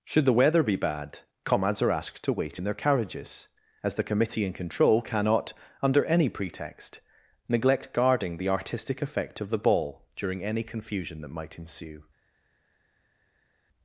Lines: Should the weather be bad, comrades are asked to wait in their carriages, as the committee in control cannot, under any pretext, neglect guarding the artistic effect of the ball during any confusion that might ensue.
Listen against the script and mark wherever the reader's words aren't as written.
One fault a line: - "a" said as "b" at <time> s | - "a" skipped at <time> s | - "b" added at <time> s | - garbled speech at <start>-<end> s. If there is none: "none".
none